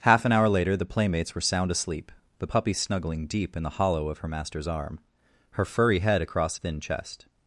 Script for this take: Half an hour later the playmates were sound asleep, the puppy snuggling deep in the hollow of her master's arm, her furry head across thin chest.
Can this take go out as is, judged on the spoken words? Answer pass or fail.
pass